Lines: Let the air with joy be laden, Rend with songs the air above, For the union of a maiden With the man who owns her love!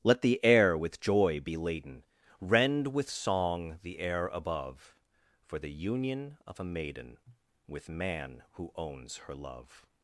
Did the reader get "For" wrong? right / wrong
right